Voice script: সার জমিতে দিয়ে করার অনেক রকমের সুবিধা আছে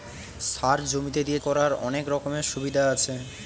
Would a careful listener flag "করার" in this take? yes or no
no